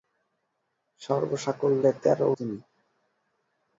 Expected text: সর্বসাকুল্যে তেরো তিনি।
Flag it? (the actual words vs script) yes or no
no